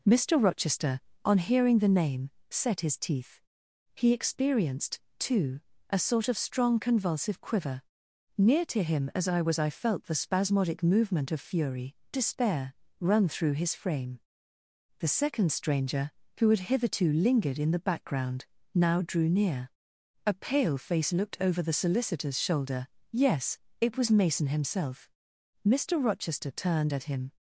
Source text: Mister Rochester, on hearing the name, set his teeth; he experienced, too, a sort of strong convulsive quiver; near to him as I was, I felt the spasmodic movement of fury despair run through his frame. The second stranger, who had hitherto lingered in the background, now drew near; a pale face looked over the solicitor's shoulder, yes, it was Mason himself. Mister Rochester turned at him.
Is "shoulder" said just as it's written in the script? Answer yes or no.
yes